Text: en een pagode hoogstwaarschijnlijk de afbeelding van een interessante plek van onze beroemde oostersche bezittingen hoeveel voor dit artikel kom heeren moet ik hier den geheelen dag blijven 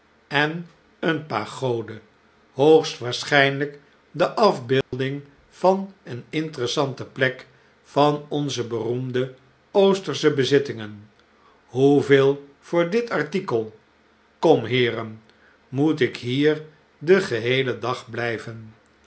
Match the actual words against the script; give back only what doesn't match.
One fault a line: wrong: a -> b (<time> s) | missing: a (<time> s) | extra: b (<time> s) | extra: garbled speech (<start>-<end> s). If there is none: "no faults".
no faults